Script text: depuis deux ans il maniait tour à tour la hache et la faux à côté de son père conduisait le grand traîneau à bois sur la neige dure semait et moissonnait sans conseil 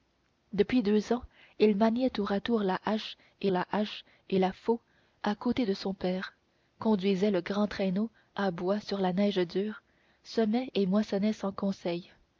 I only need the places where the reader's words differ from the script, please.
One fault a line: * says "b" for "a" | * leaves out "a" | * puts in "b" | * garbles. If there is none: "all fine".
* puts in "hache et la"